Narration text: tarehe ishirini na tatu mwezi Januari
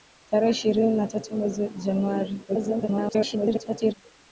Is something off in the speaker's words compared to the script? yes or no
yes